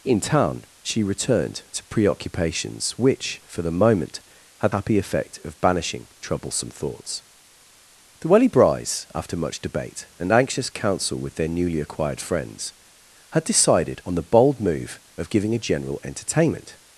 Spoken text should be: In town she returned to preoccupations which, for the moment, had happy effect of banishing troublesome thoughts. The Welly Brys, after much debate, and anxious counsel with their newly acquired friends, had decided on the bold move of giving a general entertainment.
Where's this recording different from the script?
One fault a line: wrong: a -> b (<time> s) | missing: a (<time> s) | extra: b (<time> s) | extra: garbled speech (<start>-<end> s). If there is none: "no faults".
no faults